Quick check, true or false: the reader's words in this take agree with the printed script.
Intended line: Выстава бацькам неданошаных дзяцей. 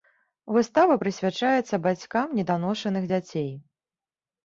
false